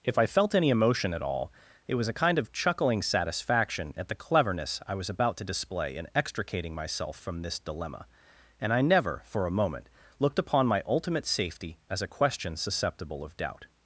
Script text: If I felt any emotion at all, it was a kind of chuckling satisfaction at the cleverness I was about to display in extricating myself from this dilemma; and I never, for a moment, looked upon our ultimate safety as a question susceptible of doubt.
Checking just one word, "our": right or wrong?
wrong